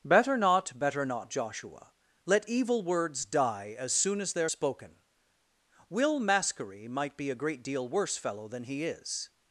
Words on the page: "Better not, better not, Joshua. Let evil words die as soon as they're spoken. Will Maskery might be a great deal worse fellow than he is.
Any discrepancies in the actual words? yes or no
no